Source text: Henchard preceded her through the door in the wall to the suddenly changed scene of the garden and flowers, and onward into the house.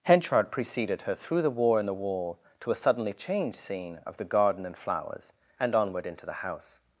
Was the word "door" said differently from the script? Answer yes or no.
yes